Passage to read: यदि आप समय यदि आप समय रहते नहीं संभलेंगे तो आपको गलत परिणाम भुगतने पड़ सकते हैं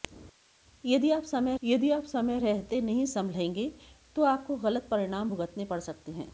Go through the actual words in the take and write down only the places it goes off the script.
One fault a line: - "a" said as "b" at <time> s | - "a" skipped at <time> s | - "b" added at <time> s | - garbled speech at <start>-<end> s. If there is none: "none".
none